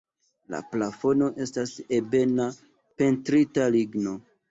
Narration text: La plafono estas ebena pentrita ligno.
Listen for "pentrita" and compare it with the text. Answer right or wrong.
right